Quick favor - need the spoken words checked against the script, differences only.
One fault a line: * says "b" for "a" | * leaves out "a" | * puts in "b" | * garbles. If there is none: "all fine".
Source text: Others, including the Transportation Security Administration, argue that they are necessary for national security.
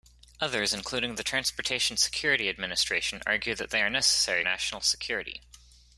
* leaves out "for"